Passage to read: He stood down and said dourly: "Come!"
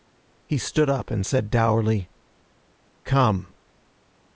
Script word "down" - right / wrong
wrong